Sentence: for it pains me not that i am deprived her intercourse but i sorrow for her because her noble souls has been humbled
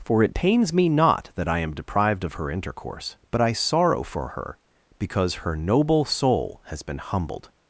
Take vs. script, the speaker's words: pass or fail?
fail